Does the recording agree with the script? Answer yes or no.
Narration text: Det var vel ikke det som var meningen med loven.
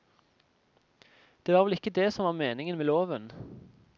yes